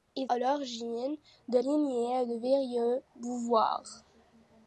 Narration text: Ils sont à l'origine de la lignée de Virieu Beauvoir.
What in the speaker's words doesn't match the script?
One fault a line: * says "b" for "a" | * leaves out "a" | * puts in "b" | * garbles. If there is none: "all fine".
* leaves out "sont"
* leaves out "la"